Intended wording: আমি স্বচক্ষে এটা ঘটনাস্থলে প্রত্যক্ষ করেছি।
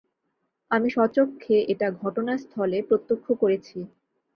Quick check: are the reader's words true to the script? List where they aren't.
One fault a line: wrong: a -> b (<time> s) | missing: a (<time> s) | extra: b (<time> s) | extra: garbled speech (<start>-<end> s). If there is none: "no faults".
no faults